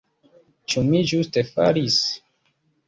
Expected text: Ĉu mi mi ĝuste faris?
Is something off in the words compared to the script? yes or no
yes